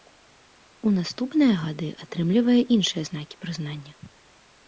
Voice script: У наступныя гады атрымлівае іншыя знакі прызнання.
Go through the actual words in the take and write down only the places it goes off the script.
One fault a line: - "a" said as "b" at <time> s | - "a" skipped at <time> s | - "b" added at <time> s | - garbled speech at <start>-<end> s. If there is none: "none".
none